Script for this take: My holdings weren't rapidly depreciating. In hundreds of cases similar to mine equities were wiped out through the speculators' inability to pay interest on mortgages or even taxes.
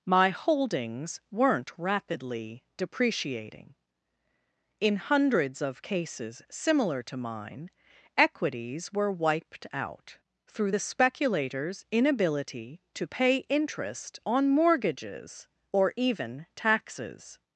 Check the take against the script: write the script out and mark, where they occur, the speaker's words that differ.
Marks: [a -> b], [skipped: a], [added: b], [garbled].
My holdings weren't rapidly depreciating. In hundreds of cases similar to mine equities were wiped out through the speculators' inability to pay interest on mortgages or even taxes.